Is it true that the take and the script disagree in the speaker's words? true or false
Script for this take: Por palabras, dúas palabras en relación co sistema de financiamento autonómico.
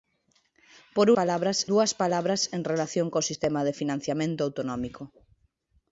false